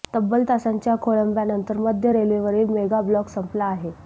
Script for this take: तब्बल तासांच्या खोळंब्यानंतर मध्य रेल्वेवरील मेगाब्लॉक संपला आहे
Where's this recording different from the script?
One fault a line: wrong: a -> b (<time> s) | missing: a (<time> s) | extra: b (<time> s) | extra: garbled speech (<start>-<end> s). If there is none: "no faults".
no faults